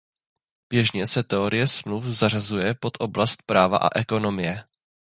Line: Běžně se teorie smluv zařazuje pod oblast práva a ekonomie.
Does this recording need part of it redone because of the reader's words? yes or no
no